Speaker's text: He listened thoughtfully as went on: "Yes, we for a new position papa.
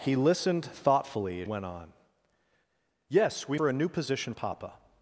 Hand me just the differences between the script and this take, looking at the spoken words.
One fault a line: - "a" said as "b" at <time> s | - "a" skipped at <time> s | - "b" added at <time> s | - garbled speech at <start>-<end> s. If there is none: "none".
none